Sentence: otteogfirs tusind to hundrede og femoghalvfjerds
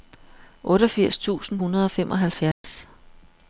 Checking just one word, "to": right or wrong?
wrong